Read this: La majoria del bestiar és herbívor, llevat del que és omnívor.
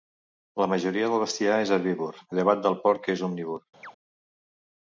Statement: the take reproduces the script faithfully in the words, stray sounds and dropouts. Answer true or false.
false